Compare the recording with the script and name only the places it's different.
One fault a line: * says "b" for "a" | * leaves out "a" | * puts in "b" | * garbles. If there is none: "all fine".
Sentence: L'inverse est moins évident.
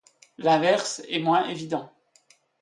all fine